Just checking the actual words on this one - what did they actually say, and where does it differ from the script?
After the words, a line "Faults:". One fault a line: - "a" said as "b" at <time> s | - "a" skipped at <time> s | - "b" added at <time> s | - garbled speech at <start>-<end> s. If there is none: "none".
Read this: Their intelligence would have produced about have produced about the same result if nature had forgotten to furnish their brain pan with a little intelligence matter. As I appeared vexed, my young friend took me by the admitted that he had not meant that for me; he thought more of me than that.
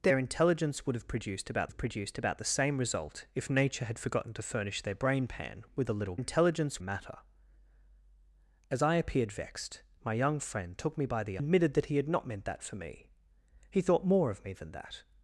Their intelligence would have produced about have produced about the same result if nature had forgotten to furnish their brain pan with a little intelligence matter. As I appeared vexed, my young friend took me by the admitted that he had not meant that for me; he thought more of me than that.
Faults:
none